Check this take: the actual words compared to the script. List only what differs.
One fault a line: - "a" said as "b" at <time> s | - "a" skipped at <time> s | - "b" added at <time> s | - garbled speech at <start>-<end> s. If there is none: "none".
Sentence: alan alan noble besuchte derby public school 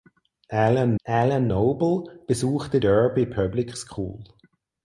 none